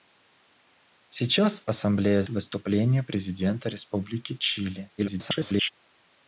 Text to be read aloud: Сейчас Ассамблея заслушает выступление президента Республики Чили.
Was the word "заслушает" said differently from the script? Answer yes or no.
yes